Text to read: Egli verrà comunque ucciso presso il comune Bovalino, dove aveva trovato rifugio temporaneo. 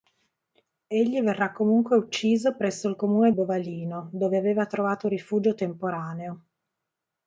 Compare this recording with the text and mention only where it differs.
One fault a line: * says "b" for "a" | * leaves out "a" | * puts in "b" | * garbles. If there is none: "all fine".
all fine